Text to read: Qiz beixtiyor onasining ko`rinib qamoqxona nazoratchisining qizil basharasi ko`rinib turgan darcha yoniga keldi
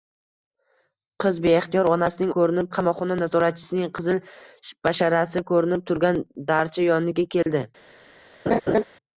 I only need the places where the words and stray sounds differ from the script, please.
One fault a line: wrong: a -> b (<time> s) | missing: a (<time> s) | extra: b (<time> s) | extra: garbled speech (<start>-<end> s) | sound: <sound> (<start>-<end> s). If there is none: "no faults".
sound: dropout (7.4-7.5 s)
sound: laugh (8.5-8.8 s)